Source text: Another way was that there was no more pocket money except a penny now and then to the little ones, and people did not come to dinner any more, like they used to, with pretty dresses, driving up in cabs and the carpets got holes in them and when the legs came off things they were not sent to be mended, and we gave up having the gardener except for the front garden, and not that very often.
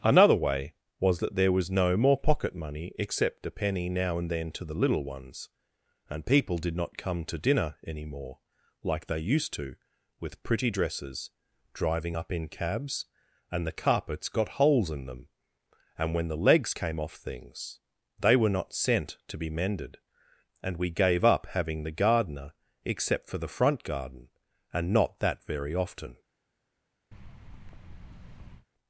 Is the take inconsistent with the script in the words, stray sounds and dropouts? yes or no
yes